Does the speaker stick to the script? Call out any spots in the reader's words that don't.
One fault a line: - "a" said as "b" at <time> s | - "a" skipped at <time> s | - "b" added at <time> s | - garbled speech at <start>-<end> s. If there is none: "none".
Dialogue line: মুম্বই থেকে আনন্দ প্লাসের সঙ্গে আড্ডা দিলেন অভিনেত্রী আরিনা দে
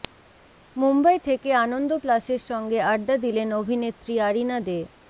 none